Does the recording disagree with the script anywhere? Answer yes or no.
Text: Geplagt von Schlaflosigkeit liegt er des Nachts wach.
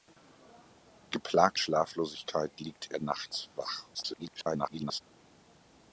yes